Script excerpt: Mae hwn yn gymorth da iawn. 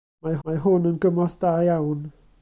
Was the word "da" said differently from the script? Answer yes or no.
no